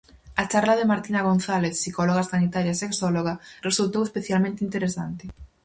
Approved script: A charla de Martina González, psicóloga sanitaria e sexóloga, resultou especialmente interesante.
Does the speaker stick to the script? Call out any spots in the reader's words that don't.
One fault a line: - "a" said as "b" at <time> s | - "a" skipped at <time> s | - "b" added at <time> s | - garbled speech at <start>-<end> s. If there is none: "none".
none